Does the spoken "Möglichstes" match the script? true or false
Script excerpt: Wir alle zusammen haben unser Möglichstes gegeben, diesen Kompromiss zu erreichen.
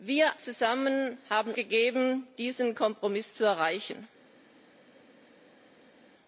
false